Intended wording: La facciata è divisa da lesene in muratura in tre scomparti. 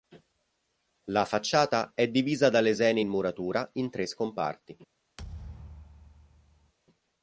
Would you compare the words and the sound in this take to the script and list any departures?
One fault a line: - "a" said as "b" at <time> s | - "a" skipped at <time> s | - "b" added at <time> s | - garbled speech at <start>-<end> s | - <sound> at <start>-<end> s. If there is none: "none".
- thud at 5.2-6.7 s